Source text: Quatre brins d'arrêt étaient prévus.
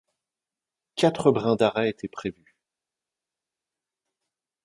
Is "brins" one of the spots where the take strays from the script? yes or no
no